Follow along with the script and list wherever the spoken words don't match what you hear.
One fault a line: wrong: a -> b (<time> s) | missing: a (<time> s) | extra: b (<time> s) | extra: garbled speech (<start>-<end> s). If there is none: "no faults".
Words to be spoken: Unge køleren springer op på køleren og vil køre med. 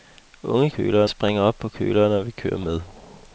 no faults